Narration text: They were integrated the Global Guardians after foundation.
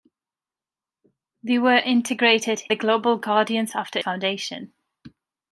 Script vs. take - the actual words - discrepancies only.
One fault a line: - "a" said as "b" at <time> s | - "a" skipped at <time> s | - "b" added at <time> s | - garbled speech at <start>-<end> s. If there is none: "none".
none